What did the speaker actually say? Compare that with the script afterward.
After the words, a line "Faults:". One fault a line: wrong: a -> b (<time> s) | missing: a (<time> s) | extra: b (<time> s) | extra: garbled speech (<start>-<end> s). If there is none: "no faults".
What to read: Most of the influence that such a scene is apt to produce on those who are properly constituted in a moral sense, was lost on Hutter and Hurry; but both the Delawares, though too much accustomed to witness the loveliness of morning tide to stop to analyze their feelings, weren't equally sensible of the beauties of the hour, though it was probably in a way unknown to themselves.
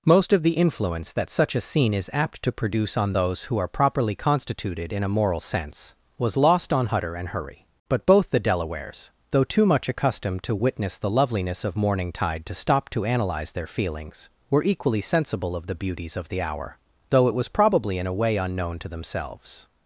Most of the influence that such a scene is apt to produce on those who are properly constituted in a moral sense, was lost on Hutter and Hurry; but both the Delawares, though too much accustomed to witness the loveliness of morning tide to stop to analyze their feelings, were equally sensible of the beauties of the hour, though it was probably in a way unknown to themselves.
Faults:
wrong: weren't -> were (14.5 s)